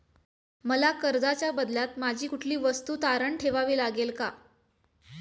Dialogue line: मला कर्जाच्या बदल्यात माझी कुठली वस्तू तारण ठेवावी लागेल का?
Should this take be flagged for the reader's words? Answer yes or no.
no